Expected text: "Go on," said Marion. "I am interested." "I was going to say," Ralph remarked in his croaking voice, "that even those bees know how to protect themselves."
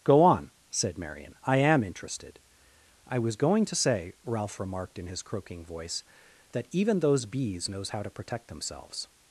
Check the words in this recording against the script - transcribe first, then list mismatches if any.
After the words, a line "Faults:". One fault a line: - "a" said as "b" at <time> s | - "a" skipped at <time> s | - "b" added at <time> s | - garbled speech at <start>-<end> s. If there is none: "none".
"Go on," said Marion. "I am interested." "I was going to say," Ralph remarked in his croaking voice, "that even those bees knows how to protect themselves."
Faults:
- "know" said as "knows" at 7.7 s